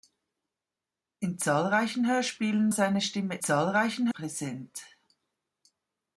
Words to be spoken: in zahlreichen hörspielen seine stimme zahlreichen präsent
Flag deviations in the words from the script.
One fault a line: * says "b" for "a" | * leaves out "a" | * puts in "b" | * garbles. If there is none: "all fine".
all fine